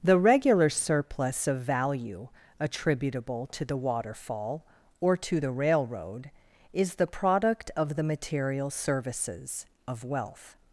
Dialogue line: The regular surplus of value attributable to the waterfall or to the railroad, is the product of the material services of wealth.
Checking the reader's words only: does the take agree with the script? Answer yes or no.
yes